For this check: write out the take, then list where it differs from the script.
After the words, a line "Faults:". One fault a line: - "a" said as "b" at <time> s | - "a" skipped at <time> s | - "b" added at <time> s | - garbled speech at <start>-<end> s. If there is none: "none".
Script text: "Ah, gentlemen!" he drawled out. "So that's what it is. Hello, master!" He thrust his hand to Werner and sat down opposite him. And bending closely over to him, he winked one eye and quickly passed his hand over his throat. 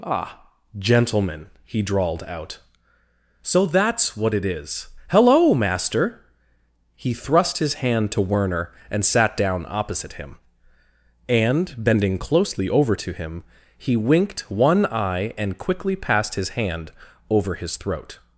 "Ah, gentlemen!" he drawled out. "So that's what it is. Hello, master!" He thrust his hand to Werner and sat down opposite him. And bending closely over to him, he winked one eye and quickly passed his hand over his throat.
Faults:
none